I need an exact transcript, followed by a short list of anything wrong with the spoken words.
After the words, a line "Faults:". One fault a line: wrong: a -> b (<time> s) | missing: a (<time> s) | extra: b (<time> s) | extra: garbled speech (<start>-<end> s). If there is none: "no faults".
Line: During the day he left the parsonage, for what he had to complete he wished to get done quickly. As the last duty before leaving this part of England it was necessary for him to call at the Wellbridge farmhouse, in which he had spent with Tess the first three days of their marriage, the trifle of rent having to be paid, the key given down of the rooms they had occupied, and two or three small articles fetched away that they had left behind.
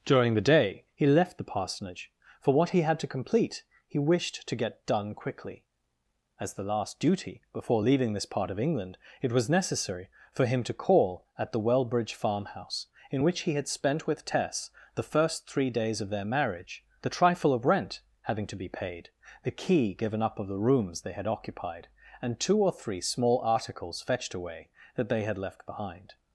During the day he left the parsonage, for what he had to complete he wished to get done quickly. As the last duty before leaving this part of England it was necessary for him to call at the Wellbridge farmhouse, in which he had spent with Tess the first three days of their marriage, the trifle of rent having to be paid, the key given up of the rooms they had occupied, and two or three small articles fetched away that they had left behind.
Faults:
wrong: down -> up (20.2 s)